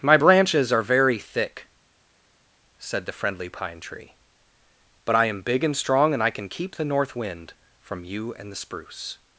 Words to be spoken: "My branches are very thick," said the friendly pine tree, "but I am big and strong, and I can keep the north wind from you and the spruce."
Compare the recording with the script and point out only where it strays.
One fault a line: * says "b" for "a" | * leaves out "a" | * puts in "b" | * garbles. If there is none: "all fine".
all fine